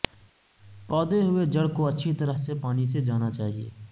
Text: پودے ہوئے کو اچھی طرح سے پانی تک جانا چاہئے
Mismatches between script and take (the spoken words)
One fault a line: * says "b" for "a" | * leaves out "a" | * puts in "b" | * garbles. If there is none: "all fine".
* puts in "جڑ"
* says "سے" for "تک"